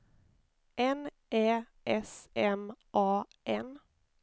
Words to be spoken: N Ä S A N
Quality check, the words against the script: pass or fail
fail